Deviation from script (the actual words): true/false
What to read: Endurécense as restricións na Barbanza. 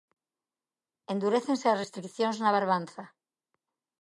false